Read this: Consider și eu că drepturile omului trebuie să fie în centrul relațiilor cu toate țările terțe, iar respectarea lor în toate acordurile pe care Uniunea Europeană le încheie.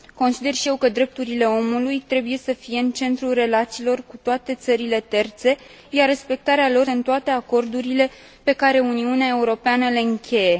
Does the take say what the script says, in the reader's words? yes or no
yes